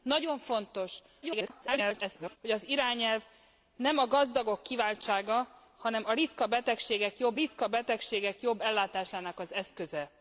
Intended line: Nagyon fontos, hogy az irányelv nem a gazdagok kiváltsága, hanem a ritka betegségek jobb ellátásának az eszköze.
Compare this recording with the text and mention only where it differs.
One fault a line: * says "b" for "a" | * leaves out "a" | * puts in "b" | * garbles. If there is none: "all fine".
* garbles
* puts in "ritka betegségek jobb"